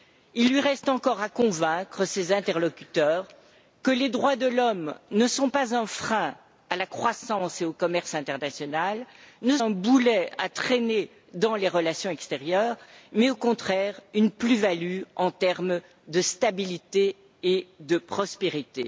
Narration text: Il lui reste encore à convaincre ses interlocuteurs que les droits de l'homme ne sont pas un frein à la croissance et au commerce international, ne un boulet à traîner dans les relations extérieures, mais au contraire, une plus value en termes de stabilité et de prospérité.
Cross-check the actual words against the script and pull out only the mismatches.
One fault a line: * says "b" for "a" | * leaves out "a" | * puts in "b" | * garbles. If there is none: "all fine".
all fine